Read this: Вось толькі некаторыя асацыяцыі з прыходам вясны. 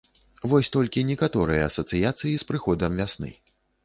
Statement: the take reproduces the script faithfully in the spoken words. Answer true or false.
true